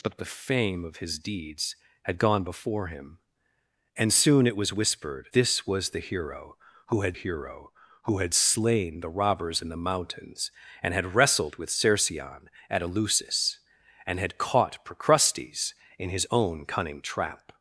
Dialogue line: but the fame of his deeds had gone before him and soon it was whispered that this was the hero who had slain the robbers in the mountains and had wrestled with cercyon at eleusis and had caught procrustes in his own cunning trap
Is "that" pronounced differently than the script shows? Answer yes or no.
yes